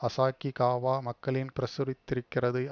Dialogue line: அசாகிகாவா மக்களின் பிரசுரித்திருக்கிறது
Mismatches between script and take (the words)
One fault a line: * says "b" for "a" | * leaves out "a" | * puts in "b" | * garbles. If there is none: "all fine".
all fine